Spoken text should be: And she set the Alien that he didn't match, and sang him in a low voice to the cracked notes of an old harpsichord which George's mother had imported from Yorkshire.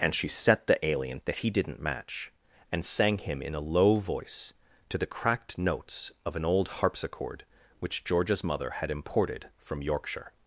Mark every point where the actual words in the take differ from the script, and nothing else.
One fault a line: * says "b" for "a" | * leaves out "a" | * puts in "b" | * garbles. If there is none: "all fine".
all fine